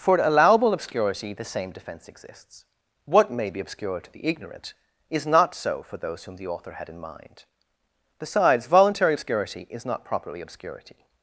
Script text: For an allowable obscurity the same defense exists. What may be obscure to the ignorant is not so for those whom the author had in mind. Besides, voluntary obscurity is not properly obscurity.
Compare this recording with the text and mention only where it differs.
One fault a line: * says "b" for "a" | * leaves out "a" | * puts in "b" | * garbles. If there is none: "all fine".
* leaves out "an"